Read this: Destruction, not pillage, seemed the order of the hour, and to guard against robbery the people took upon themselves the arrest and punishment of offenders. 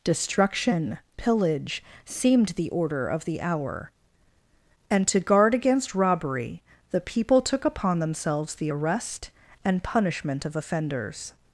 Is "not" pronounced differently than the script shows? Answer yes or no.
yes